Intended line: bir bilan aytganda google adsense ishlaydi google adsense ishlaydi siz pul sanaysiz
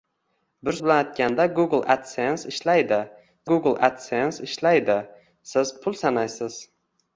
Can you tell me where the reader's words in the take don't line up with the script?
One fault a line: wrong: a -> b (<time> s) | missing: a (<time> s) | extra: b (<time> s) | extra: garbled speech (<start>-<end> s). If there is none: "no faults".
no faults